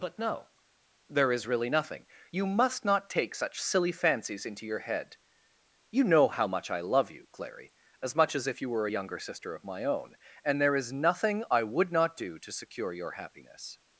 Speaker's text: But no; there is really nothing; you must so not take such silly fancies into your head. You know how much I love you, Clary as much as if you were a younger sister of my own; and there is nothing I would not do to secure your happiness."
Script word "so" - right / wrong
wrong